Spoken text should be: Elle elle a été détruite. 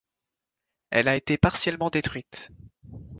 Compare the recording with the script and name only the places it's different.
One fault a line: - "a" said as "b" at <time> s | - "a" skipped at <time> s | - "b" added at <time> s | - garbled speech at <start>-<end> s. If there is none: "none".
- "elle" skipped at 1.1 s
- "partiellement" added at 1.3 s